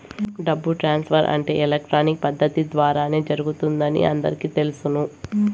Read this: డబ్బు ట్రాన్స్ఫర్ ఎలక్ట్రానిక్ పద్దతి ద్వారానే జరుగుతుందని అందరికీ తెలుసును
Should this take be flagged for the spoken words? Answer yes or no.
yes